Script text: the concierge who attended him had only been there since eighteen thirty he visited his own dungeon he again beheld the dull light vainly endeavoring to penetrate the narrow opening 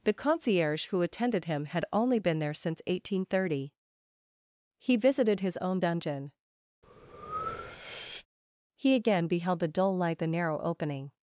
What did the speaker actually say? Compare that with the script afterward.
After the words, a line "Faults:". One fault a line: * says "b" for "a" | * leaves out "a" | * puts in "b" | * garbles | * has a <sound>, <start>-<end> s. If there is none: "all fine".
the concierge who attended him had only been there since eighteen thirty he visited his own dungeon he again beheld the dull light the narrow opening
Faults:
* has a breath, 6.8-8.3 s
* leaves out "vainly endeavoring to penetrate"